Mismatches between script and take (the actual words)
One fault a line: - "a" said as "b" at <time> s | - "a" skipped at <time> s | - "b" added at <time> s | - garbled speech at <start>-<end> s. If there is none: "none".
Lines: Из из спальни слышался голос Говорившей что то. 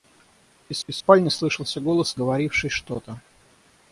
none